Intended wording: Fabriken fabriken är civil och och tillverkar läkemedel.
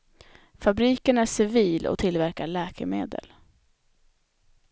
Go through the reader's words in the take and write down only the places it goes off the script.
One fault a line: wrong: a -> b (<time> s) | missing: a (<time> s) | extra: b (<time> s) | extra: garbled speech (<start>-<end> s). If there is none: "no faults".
missing: fabriken (1.2 s)
missing: och (2.0 s)